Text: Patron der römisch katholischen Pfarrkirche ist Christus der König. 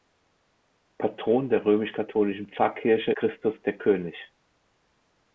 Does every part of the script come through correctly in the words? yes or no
no